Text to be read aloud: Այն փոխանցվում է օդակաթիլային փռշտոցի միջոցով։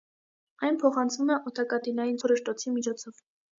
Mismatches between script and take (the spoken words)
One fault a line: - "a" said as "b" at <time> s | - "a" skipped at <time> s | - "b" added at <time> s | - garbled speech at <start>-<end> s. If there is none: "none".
none